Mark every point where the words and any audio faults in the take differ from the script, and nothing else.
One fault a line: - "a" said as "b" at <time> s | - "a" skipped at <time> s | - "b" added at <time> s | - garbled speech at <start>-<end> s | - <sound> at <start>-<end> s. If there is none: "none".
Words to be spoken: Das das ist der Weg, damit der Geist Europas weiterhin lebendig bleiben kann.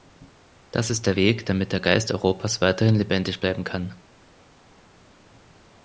- "das" skipped at 0.9 s